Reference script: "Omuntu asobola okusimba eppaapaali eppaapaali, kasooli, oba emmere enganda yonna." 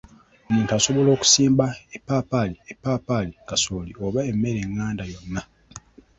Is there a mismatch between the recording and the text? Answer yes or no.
no